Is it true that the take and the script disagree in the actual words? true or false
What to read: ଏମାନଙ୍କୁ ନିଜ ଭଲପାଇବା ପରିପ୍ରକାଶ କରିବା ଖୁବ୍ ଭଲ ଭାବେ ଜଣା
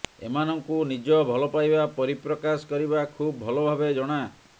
false